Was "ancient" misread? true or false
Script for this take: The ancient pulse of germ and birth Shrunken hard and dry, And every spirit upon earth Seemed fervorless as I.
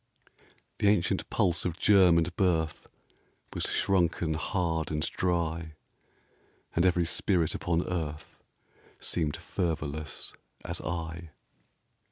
false